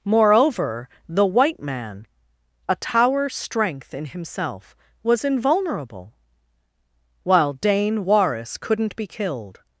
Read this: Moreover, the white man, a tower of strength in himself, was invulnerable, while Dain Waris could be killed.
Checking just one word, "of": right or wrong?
wrong